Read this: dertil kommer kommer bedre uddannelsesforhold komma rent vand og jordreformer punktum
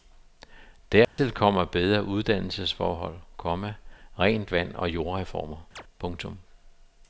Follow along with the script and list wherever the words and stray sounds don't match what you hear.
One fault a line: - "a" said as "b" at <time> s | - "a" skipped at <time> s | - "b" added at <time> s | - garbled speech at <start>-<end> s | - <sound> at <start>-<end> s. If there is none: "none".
- dropout at 1.0-1.2 s
- "kommer" skipped at 1.6 s
- chirp at 5.8-5.8 s